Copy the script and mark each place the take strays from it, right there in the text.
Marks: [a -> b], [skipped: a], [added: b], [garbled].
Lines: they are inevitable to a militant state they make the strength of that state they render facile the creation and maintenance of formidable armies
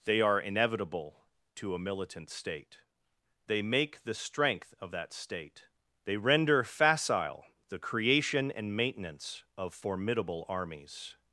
they are inevitable to a militant state they make the strength of that state they render facile the creation and maintenance of formidable armies